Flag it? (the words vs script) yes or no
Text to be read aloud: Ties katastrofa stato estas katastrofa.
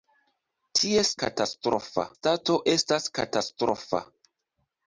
no